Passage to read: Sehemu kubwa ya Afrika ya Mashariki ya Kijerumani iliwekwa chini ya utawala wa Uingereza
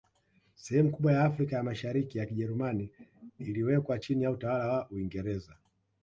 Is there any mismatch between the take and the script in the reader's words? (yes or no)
no